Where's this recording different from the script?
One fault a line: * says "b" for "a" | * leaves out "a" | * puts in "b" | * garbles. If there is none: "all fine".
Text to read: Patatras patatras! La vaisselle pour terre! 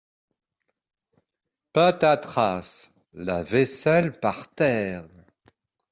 * leaves out "patatras"
* says "par" for "pour"